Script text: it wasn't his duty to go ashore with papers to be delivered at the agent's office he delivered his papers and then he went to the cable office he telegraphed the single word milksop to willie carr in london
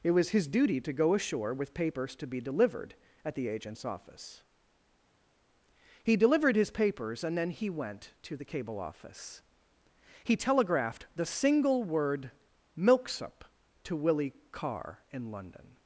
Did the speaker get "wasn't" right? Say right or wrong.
wrong